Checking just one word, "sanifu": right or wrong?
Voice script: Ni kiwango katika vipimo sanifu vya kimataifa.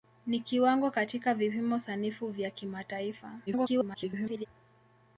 right